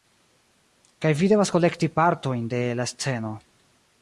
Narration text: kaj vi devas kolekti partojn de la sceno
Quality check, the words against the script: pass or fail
pass